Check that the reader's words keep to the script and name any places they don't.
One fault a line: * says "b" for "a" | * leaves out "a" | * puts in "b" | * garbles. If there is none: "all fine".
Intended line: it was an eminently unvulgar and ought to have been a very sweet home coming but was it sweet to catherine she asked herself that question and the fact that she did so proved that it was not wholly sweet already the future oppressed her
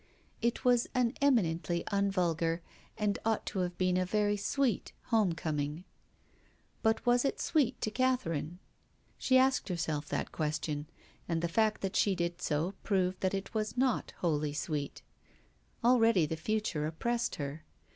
all fine